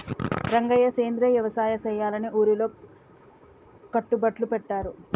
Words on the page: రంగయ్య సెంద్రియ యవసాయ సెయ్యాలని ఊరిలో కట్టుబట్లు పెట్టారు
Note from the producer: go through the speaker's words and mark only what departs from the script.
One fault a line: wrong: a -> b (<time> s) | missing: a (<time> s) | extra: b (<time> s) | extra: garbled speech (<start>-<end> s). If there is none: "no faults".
no faults